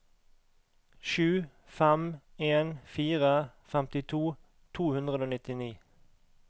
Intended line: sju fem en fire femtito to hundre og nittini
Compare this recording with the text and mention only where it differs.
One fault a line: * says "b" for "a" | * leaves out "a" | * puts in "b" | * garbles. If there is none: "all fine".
all fine